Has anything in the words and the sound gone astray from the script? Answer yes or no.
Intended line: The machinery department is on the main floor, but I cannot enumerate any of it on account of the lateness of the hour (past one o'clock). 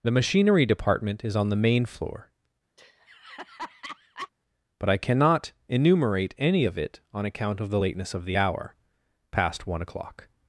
yes